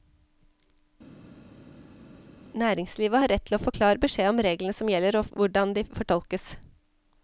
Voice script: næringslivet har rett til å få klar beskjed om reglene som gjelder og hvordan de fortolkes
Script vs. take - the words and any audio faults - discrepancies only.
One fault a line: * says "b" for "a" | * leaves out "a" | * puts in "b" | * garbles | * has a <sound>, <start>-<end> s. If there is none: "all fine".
all fine